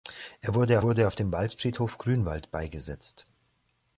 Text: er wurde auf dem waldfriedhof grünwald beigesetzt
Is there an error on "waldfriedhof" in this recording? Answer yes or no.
no